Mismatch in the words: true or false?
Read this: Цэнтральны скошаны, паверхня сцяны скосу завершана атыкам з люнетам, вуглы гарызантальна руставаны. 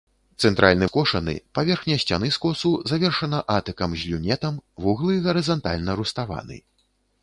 false